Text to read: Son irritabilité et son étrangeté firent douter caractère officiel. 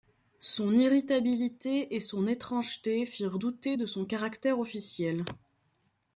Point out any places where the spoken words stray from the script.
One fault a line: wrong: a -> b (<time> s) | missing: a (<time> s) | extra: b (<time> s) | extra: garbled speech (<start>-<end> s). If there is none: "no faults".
extra: de son (3.7 s)